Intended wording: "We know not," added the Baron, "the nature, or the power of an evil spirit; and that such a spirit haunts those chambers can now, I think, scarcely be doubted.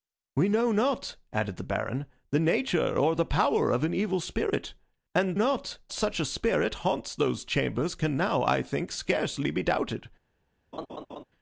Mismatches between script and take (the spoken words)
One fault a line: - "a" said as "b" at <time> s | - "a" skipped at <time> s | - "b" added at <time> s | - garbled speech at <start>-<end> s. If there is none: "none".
- "that" said as "not" at 5.3 s